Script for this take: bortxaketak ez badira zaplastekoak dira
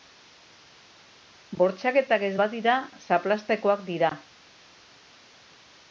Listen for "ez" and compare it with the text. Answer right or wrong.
right